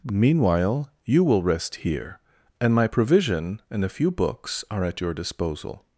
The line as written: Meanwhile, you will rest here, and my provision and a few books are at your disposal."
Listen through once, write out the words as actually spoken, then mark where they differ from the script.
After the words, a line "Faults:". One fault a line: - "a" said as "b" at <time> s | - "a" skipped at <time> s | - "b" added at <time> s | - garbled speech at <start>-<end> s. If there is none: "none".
Meanwhile, you will rest here, and my provision and a few books are at your disposal."
Faults:
none